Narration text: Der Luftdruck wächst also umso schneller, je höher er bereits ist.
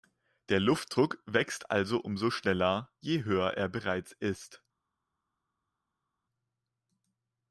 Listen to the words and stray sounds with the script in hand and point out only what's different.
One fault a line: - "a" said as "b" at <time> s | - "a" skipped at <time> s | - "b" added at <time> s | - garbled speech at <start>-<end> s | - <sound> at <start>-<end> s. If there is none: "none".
none